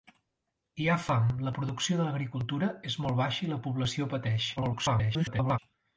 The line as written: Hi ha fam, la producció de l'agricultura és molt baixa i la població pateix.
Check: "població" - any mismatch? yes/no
no